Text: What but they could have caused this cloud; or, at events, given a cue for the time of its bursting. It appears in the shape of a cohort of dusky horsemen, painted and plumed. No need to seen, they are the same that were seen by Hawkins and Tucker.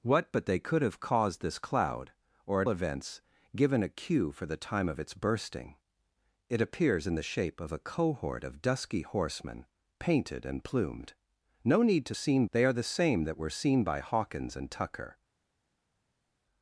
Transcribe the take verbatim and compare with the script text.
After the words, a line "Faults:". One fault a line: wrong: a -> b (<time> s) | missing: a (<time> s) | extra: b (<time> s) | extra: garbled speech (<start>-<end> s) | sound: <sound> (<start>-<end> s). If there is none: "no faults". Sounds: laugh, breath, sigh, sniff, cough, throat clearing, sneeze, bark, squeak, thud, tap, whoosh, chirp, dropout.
What but they could have caused this cloud; or, at events, given a cue for the time of its bursting. It appears in the shape of a cohort of dusky horsemen, painted and plumed. No need to seen, they are the same that were seen by Hawkins and Tucker.
Faults:
no faults